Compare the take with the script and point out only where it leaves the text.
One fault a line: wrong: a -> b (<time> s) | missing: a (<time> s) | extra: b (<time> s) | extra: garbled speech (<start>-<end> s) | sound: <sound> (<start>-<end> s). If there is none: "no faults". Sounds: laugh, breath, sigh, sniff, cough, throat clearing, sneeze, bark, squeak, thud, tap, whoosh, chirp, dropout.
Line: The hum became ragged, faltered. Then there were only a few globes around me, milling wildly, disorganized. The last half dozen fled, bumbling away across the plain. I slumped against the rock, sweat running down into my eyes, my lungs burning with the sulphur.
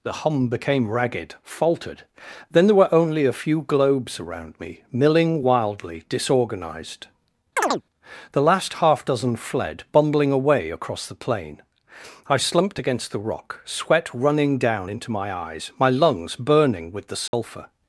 sound: chirp (7.6-7.8 s)
sound: dropout (17.3-17.3 s)